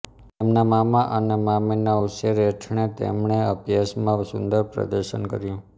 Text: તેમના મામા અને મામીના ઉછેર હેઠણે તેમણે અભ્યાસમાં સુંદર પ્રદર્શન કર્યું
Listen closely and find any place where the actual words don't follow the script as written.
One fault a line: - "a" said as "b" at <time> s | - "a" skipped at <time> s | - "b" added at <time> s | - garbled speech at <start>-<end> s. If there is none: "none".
none